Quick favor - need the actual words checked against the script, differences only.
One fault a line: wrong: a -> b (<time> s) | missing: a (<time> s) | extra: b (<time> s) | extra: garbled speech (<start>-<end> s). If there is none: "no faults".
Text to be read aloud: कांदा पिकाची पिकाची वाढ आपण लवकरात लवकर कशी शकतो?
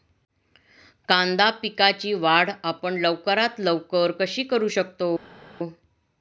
missing: पिकाची (2.1 s)
extra: करू (4.4 s)